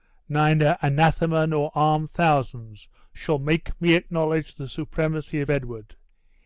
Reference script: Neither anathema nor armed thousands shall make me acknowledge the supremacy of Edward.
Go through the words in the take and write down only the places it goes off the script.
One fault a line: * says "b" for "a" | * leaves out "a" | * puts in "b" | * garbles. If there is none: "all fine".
all fine